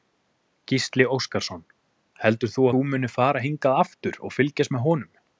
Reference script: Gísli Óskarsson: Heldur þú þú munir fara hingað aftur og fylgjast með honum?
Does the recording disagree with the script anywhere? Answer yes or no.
no